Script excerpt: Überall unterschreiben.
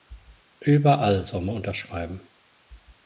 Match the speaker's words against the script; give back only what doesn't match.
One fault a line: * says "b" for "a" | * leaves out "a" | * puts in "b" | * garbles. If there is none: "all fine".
* puts in "soll man"